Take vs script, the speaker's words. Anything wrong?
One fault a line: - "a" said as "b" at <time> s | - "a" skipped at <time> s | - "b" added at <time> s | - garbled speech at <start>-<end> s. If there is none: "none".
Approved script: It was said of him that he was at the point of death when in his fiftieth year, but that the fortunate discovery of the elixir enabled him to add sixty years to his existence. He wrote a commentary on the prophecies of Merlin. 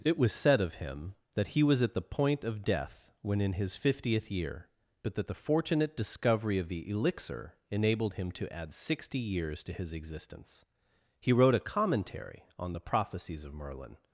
none